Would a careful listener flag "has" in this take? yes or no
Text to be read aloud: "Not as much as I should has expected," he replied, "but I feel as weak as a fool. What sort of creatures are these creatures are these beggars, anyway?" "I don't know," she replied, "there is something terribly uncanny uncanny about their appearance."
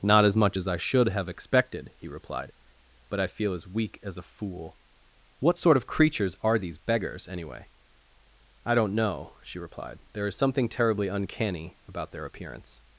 yes